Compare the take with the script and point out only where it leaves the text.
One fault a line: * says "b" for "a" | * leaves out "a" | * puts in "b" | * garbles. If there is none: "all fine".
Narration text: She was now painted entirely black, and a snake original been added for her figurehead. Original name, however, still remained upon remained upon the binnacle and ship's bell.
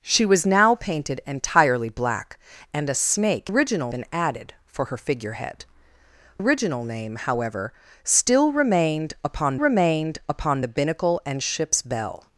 all fine